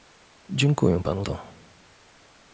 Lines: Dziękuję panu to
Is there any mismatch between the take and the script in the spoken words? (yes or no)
no